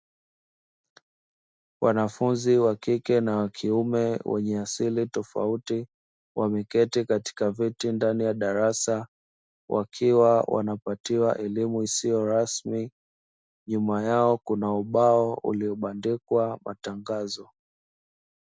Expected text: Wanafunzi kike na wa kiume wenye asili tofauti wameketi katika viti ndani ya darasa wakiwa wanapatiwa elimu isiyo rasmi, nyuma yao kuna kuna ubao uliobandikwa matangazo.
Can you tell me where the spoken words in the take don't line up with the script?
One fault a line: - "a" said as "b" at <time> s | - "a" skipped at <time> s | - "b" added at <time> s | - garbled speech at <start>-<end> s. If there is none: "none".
- "wa" added at 2.6 s
- "kuna" skipped at 14.7 s